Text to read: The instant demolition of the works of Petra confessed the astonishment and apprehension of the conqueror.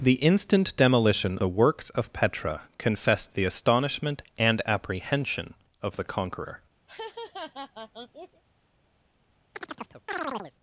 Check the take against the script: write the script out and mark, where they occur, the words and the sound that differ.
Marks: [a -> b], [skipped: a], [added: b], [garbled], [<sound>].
The instant demolition [skipped: of] the works of Petra confessed the astonishment and apprehension of the conqueror. [laugh] [chirp]